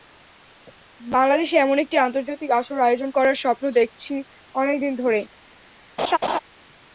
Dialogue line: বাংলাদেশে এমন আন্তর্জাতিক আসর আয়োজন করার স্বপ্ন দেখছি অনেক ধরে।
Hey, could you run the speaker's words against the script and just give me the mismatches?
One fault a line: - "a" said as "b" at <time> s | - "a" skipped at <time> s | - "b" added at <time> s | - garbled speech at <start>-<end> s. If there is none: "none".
- "একটি" added at 1.8 s
- "দিন" added at 4.8 s